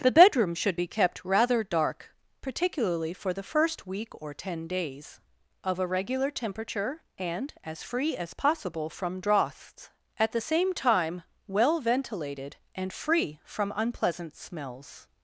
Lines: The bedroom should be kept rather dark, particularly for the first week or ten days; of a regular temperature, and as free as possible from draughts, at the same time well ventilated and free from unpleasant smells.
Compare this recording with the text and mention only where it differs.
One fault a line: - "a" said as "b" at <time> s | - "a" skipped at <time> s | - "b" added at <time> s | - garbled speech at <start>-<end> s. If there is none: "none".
none